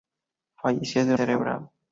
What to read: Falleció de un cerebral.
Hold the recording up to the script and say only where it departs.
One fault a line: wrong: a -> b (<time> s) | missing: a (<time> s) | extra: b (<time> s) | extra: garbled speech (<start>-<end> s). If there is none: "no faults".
no faults